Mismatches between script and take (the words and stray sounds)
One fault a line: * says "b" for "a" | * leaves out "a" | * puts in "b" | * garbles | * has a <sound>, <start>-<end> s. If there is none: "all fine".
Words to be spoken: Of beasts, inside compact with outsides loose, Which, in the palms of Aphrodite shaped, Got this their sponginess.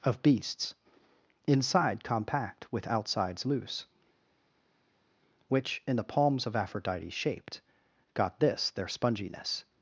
all fine